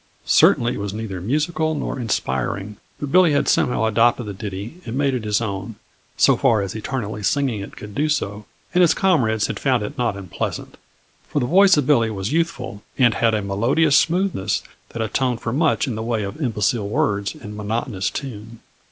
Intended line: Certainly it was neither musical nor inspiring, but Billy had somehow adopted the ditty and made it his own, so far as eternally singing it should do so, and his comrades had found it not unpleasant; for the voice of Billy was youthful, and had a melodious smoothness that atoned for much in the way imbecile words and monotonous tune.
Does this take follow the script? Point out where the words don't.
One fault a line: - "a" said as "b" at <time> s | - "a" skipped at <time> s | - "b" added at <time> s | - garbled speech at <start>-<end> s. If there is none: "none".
- "should" said as "could" at 7.7 s
- "of" added at 16.2 s